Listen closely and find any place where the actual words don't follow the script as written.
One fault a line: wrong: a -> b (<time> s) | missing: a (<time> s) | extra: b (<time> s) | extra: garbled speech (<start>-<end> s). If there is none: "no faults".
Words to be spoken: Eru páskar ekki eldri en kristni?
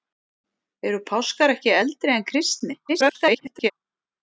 extra: garbled speech (2.9-3.7 s)